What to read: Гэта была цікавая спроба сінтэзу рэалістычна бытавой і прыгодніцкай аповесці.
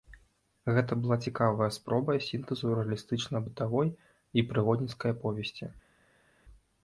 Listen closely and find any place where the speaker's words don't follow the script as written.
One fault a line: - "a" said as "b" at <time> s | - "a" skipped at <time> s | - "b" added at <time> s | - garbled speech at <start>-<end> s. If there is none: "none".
none